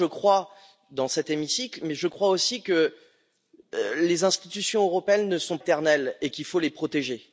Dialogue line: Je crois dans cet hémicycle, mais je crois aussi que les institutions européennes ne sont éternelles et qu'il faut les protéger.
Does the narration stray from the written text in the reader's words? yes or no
no